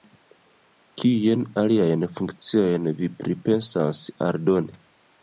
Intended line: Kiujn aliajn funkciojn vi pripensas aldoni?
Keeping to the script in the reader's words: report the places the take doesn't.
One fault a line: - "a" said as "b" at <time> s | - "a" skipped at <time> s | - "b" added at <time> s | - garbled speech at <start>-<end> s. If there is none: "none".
none